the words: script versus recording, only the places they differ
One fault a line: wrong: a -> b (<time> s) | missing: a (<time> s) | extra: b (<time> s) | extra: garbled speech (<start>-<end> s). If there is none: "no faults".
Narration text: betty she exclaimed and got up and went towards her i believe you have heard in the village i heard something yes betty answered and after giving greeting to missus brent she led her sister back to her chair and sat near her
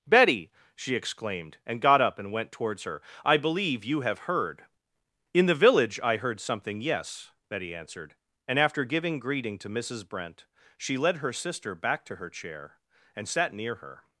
no faults